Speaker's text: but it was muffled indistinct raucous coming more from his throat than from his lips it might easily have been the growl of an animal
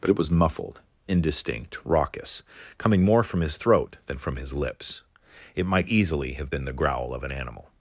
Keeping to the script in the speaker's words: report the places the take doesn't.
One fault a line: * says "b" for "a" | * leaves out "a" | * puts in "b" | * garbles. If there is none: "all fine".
all fine